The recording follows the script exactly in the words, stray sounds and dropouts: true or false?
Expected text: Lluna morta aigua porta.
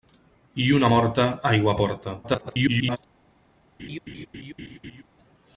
false